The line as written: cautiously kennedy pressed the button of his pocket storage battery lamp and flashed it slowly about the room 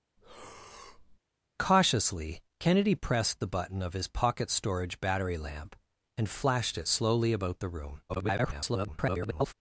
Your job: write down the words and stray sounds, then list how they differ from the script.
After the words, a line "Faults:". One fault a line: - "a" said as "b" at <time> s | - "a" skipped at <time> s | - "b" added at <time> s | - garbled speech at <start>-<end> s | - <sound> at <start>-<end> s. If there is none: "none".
cautiously kennedy pressed the button of his pocket storage battery lamp and flashed it slowly about the room [garbled]
Faults:
- breath at 0.2-1.2 s
- garbled speech at 8.1-9.5 s